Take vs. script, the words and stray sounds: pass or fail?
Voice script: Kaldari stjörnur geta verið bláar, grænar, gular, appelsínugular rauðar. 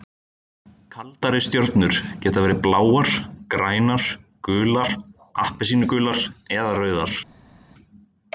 fail